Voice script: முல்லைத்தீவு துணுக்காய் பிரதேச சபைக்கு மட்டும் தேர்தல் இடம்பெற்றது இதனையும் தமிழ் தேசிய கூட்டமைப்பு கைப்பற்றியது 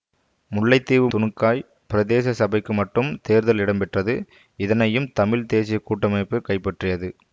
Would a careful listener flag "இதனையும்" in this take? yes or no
no